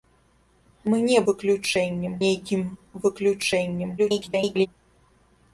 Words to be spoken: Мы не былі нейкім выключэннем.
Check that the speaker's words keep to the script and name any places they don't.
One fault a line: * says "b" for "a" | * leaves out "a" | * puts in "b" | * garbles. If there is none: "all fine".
* says "выключэннем" for "былі"
* garbles